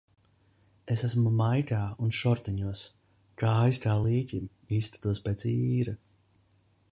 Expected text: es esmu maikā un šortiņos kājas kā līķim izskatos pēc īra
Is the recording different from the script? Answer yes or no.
no